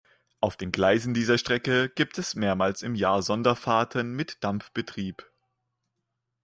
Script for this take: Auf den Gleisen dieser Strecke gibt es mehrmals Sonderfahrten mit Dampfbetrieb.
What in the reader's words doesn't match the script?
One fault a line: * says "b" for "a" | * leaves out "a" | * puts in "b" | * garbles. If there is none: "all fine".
* puts in "im Jahr"